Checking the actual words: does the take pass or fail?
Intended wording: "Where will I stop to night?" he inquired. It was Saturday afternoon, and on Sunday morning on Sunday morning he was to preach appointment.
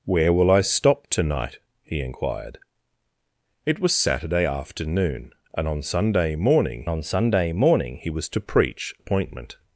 pass